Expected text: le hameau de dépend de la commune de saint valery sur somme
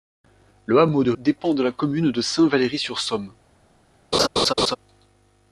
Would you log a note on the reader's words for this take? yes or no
no